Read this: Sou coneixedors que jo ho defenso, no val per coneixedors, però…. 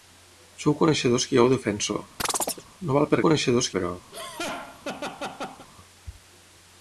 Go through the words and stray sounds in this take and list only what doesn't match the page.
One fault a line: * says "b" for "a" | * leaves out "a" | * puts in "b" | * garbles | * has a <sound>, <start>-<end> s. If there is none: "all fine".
* has a chirp, 2.2-2.6 s
* has a laugh, 4.1-5.7 s